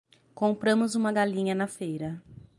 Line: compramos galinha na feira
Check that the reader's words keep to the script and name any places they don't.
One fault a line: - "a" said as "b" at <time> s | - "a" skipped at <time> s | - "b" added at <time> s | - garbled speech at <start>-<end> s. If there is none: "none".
- "uma" added at 0.9 s